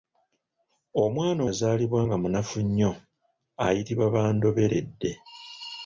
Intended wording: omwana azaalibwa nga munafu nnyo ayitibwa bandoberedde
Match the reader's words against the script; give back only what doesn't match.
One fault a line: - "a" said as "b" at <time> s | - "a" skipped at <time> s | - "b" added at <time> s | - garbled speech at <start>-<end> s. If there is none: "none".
none